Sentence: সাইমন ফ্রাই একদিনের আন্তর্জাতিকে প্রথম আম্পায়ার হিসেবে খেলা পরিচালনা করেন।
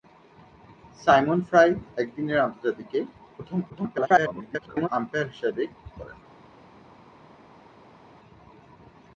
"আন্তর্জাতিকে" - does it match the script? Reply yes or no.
yes